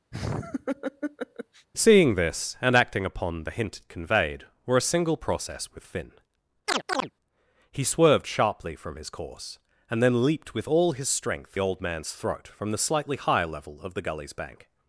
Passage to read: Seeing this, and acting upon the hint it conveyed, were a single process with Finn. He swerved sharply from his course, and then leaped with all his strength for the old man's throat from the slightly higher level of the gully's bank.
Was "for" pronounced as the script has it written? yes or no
no